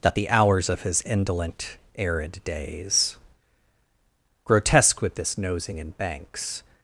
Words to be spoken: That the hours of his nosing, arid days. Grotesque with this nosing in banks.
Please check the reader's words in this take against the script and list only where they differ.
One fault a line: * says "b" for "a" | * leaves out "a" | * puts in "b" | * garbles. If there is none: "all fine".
* says "indolent" for "nosing"